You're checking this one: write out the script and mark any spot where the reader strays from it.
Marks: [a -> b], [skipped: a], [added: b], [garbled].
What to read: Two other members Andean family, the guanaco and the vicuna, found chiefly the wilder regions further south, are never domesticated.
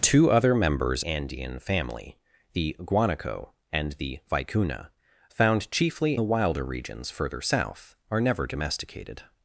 Two other members Andean family, the guanaco and the vicuna, found chiefly the wilder regions further south, are never domesticated.